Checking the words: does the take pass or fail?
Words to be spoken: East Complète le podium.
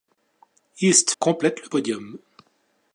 pass